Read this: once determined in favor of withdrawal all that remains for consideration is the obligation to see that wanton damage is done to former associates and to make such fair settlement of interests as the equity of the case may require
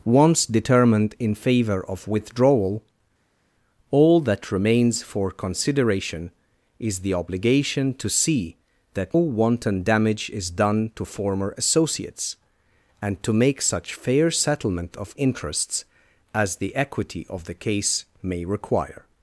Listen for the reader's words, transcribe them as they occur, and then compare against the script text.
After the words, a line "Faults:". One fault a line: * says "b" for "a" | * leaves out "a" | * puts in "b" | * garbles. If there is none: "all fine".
once determined in favor of withdrawal all that remains for consideration is the obligation to see that wanton damage is done to former associates and to make such fair settlement of interests as the equity of the case may require
Faults:
all fine